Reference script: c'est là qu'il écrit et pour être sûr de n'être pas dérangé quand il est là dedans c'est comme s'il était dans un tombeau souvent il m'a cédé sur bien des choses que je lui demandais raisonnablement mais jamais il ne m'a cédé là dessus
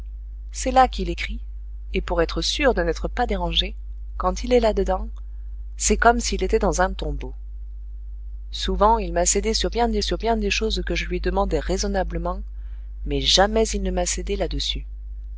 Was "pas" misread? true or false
false